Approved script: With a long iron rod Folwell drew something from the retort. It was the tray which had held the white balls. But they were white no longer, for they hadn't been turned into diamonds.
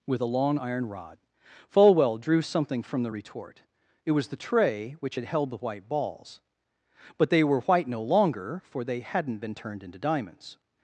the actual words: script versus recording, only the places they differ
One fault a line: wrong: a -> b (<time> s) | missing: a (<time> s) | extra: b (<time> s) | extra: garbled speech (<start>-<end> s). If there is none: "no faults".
no faults